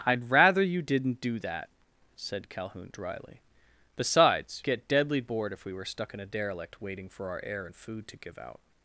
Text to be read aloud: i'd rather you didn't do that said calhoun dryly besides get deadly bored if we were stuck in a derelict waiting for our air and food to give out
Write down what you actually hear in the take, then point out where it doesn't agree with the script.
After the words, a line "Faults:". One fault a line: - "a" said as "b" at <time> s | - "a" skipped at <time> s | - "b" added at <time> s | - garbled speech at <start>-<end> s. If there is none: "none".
i'd rather you didn't do that said calhoun dryly besides get deadly bored if we were stuck in a derelict waiting for our air and food to give out
Faults:
none